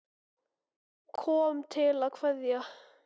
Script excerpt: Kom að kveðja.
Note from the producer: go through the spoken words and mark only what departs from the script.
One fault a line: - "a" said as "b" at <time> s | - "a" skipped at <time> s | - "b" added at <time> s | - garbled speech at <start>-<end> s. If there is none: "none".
- "til" added at 1.8 s